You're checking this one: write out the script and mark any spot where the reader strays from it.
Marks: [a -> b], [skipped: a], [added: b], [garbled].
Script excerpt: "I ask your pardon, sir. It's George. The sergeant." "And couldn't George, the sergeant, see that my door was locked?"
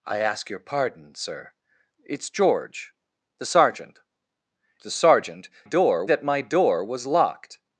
"I ask your pardon, sir. It's George. The sergeant." [skipped: "And couldn't George,] the sergeant, [see -> door] that my door was locked?"